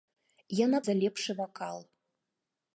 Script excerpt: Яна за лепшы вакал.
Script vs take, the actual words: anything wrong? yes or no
no